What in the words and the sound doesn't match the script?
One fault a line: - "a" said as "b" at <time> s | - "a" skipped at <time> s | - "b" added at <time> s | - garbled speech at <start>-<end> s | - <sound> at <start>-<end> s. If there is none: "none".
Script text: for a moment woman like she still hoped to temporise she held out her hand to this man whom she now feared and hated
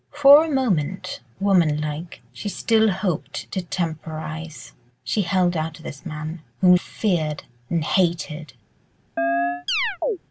- "her hand" skipped at 5.8 s
- "she now" skipped at 6.7 s
- chirp at 9.2-10.2 s